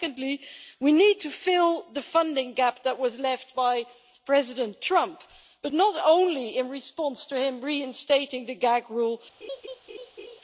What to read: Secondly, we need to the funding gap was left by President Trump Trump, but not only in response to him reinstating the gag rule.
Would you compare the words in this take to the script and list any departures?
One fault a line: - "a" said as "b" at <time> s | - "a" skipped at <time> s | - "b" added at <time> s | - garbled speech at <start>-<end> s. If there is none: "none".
- "fill" added at 1.3 s
- "that" added at 2.9 s
- "Trump" skipped at 5.2 s